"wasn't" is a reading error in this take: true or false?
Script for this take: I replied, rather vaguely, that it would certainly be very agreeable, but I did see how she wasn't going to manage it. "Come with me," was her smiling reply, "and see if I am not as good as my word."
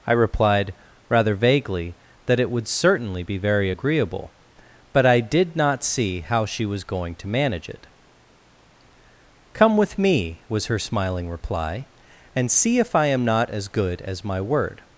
true